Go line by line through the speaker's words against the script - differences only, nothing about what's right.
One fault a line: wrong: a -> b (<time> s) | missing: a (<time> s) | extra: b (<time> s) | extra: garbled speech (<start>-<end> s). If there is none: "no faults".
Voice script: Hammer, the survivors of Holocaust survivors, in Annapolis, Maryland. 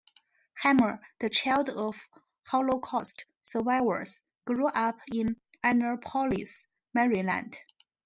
wrong: survivors -> child (1.3 s)
extra: grew up (4.5 s)